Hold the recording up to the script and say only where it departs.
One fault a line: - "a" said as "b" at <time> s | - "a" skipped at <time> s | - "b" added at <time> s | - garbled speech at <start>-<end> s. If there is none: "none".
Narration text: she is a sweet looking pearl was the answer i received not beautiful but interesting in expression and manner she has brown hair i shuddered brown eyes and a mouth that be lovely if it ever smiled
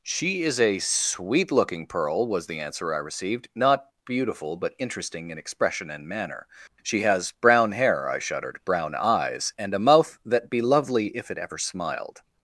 none